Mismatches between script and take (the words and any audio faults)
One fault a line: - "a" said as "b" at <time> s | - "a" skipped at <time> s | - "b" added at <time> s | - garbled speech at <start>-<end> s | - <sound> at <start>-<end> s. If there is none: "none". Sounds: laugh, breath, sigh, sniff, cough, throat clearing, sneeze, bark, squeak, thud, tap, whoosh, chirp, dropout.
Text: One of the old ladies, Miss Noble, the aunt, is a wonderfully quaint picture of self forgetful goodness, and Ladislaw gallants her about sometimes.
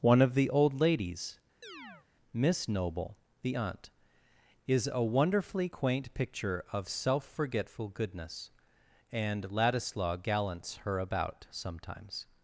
- chirp at 1.6-2.1 s